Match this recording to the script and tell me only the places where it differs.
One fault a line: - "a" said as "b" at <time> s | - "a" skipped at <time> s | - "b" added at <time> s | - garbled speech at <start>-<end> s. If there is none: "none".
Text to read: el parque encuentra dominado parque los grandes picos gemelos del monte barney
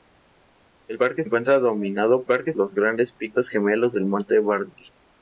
none